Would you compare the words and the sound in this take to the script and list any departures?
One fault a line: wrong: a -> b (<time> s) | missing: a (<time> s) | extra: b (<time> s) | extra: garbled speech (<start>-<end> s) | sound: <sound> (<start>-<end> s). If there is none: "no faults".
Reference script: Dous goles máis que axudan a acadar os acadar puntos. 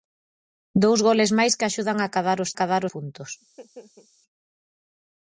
sound: laugh (3.4-4.1 s)